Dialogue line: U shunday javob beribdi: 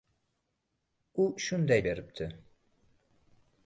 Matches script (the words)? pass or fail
fail